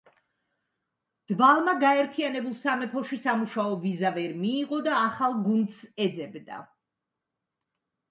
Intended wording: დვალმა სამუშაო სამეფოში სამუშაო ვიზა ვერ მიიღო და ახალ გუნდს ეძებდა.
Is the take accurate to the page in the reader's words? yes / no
no